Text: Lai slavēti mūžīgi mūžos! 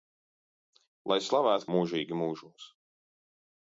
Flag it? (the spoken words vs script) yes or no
no